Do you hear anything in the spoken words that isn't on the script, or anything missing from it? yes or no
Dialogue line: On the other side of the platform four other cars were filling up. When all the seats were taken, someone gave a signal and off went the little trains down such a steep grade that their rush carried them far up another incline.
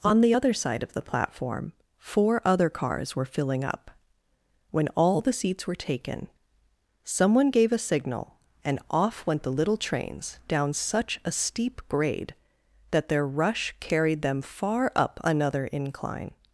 no